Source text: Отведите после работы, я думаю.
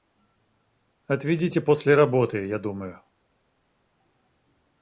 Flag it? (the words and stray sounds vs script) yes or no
no